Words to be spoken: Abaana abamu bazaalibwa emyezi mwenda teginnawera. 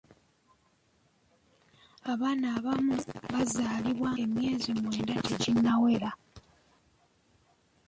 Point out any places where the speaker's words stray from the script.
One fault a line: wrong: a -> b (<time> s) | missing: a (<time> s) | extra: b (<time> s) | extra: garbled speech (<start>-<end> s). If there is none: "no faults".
no faults